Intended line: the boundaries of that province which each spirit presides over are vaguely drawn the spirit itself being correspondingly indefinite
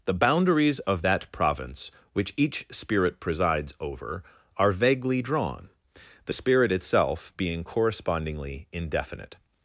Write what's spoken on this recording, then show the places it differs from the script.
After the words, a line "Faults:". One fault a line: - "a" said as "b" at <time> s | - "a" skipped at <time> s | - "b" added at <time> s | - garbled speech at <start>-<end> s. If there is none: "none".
the boundaries of that province which each spirit presides over are vaguely drawn the spirit itself being correspondingly indefinite
Faults:
none